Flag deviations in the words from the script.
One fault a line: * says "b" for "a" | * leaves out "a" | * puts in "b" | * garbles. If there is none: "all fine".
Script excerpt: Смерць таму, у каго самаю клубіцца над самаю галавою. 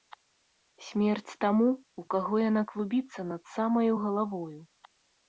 * says "яна" for "самаю"